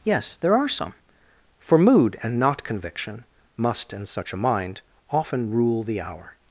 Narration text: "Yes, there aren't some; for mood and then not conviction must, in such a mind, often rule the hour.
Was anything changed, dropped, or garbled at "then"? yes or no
yes